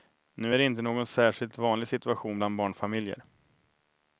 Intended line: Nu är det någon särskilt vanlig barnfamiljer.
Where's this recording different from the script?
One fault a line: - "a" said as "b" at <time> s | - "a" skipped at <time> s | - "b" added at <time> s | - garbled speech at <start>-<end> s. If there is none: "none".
- "inte" added at 0.6 s
- "situation bland" added at 1.9 s